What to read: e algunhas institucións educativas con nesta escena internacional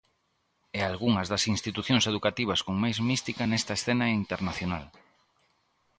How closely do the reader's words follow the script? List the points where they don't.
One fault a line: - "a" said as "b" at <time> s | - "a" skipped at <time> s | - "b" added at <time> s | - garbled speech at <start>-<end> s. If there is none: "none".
- "das" added at 1.3 s
- "máis mística" added at 2.8 s